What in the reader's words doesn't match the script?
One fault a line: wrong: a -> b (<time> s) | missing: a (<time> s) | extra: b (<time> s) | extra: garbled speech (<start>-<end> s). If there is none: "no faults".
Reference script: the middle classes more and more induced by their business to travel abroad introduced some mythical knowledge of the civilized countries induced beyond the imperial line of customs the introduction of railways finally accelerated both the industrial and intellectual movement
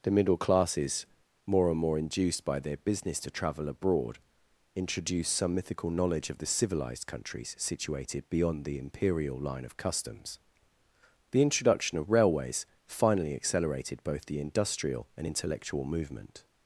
wrong: induced -> situated (7.6 s)